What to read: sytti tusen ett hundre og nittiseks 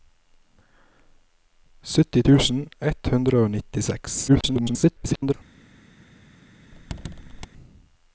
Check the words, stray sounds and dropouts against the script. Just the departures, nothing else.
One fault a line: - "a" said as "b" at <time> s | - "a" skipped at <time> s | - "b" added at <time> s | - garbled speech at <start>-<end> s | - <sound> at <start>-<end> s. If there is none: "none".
- garbled speech at 4.3-5.3 s
- squeak at 6.7-7.5 s